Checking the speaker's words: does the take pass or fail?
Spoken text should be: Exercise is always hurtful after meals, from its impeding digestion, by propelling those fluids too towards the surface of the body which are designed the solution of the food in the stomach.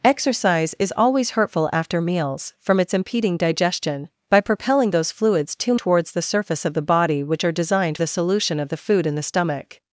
pass